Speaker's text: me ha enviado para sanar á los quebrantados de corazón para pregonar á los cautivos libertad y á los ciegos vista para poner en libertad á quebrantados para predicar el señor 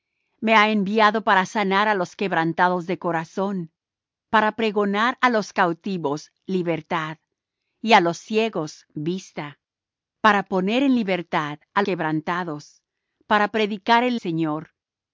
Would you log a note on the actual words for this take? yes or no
no